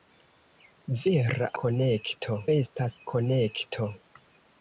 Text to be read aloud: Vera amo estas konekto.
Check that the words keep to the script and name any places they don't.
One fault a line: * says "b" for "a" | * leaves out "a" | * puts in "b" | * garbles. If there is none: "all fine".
* says "konekto" for "amo"